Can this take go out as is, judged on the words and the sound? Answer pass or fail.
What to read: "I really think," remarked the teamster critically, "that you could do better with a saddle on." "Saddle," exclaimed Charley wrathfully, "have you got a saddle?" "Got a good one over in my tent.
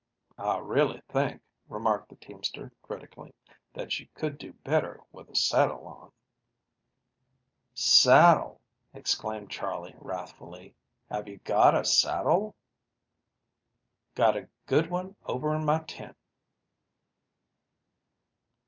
pass